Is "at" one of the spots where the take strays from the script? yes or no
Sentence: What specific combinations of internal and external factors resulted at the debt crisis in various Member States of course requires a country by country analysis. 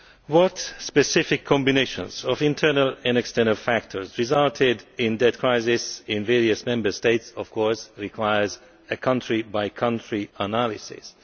yes